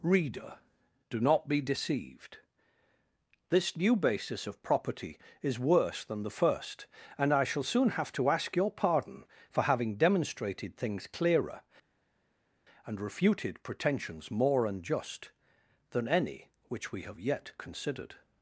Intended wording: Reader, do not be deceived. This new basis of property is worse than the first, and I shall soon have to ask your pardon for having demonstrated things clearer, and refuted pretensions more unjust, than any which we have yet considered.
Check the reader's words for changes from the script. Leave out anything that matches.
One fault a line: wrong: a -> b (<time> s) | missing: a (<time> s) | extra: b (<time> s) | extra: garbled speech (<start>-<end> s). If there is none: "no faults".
no faults